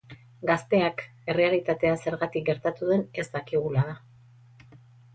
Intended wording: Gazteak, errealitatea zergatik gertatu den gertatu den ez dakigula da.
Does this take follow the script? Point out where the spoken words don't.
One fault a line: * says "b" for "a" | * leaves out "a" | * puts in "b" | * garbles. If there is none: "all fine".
* leaves out "gertatu den"